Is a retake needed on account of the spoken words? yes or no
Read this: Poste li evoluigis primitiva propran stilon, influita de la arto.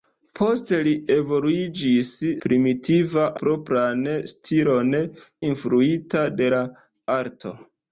no